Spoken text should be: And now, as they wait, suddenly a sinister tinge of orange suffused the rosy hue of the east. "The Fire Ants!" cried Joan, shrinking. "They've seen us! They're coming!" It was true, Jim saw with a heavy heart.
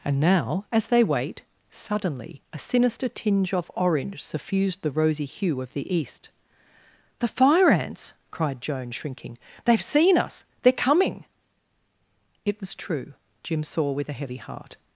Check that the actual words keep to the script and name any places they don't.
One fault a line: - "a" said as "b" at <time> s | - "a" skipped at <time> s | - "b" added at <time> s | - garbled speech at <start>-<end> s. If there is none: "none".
none